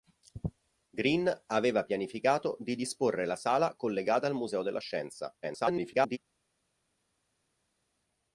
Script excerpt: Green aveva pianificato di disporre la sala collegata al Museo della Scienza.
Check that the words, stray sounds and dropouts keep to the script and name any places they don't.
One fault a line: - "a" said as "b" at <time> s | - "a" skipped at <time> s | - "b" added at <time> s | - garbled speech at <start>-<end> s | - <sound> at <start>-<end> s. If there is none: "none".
- garbled speech at 5.4-6.2 s